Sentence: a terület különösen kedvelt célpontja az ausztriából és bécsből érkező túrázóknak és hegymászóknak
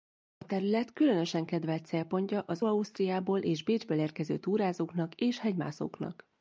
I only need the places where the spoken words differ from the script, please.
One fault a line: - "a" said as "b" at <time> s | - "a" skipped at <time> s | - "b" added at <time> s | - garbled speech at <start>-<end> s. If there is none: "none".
none